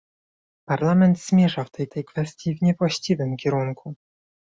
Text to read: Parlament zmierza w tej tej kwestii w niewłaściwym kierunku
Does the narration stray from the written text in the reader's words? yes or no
no